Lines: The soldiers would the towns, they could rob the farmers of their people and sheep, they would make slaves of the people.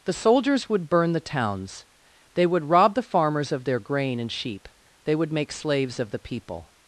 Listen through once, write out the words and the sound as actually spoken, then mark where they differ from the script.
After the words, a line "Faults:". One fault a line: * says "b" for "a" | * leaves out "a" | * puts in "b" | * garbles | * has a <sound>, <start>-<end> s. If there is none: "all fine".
The soldiers would burn the towns, they would rob the farmers of their grain and sheep, they would make slaves of the people.
Faults:
* puts in "burn"
* says "would" for "could"
* says "grain" for "people"